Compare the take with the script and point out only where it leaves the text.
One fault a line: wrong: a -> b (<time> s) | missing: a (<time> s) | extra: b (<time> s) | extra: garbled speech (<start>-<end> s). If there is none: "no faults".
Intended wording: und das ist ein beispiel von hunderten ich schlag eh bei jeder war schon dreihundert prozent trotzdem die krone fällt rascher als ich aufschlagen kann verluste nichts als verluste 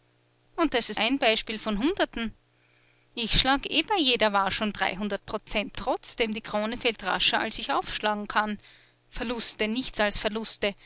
no faults